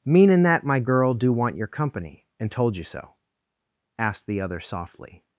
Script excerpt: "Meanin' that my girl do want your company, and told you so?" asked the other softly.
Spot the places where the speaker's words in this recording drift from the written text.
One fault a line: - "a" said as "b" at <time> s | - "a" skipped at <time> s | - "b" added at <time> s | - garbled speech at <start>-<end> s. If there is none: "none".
none